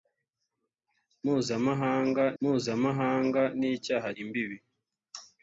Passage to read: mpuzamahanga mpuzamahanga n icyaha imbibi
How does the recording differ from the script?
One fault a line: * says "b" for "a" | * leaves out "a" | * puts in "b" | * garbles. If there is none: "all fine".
all fine